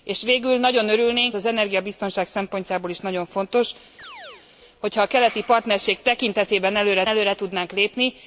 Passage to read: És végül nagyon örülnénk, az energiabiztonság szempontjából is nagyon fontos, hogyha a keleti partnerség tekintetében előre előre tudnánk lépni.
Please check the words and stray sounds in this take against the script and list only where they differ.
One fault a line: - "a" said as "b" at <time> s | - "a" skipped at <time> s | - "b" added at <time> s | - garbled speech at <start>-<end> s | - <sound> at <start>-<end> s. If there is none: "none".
- chirp at 4.0-4.5 s